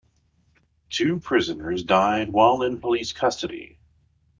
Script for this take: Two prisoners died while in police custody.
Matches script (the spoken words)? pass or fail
pass